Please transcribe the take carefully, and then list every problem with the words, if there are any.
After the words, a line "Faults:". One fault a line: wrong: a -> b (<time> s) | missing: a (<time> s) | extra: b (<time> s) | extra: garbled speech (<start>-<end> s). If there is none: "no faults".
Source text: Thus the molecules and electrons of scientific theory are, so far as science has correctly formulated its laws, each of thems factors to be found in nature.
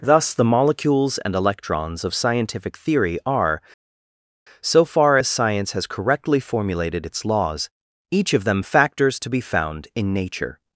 Thus the molecules and electrons of scientific theory are, so far as science has correctly formulated its laws, each of them factors to be found in nature.
Faults:
wrong: thems -> them (8.5 s)